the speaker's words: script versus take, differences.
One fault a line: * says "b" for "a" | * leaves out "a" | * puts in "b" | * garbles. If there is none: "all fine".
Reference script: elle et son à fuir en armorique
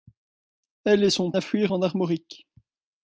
all fine